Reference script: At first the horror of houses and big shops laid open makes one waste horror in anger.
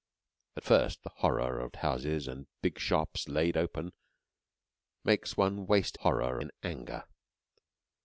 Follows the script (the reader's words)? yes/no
yes